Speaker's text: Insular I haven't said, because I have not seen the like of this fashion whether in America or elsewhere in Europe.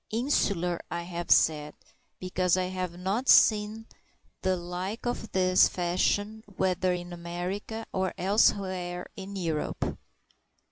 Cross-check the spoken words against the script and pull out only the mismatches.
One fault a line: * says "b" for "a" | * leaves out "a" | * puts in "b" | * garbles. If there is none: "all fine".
* says "have" for "haven't"